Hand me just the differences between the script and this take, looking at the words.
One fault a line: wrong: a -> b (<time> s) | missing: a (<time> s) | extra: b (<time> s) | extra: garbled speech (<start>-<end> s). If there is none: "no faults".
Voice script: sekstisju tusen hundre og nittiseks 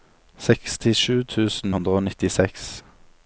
no faults